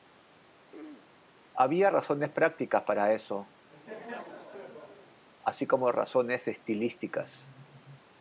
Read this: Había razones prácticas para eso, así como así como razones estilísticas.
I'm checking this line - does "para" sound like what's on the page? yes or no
yes